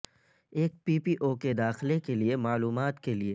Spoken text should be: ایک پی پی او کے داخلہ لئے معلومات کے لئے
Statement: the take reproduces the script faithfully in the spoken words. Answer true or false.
false